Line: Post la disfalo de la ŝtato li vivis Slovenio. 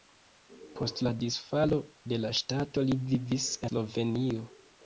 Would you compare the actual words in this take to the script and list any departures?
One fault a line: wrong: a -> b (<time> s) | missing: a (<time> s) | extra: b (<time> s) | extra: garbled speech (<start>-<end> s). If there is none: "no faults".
no faults